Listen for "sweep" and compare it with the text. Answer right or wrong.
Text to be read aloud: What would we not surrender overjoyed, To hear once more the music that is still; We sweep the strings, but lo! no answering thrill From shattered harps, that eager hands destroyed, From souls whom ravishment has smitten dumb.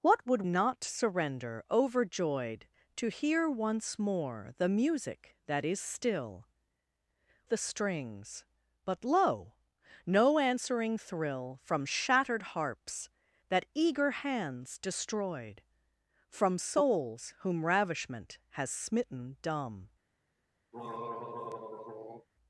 wrong